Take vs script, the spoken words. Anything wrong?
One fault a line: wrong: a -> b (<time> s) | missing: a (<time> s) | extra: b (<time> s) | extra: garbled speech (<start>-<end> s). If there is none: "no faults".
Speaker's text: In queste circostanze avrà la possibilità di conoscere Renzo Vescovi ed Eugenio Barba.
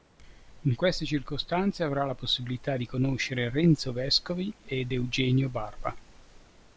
no faults